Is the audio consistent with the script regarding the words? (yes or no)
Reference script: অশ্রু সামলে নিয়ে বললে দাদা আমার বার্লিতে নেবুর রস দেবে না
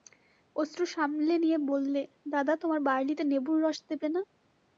no